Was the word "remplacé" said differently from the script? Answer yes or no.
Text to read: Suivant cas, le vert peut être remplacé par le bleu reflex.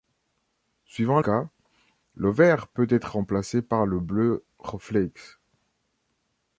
no